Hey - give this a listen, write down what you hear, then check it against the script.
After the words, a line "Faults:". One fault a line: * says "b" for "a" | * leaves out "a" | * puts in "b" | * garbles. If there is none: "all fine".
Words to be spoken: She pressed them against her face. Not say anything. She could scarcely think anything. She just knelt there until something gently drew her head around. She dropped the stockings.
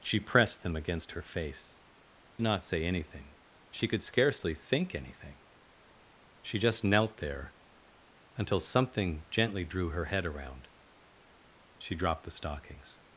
She pressed them against her face. Not say anything. She could scarcely think anything. She just knelt there until something gently drew her head around. She dropped the stockings.
Faults:
all fine